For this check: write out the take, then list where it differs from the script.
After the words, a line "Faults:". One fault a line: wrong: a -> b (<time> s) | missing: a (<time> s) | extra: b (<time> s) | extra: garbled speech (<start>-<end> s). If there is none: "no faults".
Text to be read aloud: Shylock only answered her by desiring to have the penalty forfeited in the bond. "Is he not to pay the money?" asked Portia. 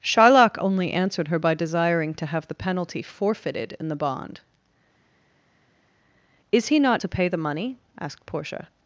Shylock only answered her by desiring to have the penalty forfeited in the bond. "Is he not to pay the money?" asked Portia.
Faults:
no faults